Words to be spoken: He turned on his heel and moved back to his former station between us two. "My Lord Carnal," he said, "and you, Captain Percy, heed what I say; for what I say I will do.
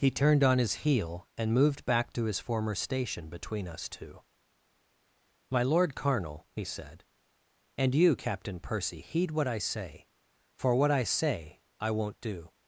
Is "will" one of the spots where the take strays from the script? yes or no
yes